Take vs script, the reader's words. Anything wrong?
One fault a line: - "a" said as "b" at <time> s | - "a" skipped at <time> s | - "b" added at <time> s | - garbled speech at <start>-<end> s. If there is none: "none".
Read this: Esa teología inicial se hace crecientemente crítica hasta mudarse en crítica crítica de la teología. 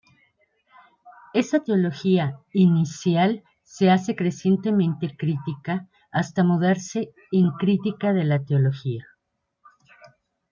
- "crítica" skipped at 8.1 s